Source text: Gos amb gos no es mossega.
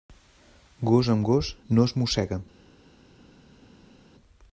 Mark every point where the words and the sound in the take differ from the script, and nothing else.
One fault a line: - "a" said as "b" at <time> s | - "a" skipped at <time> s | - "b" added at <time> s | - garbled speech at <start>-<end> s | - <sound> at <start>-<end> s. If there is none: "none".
none